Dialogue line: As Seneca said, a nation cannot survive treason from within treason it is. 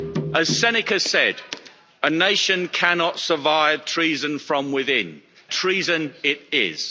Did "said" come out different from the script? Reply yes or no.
no